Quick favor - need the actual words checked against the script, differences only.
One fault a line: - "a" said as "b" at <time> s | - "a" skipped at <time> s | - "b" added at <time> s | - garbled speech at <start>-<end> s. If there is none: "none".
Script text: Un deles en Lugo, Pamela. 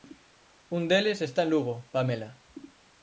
- "está" added at 1.2 s